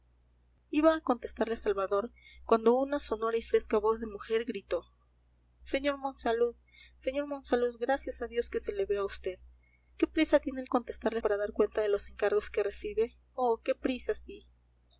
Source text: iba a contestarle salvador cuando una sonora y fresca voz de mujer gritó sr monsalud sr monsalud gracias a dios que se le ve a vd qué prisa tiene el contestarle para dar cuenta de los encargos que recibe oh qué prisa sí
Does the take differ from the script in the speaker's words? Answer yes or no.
no